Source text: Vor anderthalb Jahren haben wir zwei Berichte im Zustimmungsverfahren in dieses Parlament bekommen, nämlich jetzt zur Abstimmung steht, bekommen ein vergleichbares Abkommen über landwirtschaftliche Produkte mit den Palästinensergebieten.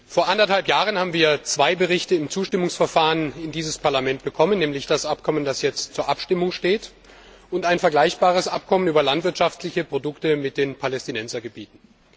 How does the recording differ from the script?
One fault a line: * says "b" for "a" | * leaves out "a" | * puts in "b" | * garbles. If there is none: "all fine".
* puts in "das Abkommen das"
* says "und" for "bekommen"